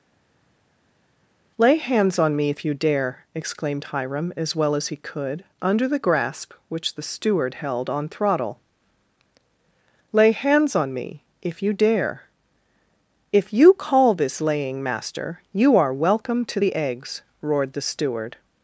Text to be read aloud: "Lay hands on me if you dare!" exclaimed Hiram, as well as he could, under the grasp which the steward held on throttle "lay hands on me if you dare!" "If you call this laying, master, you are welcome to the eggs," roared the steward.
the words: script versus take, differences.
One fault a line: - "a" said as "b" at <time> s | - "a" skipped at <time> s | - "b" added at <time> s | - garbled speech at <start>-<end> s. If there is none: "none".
none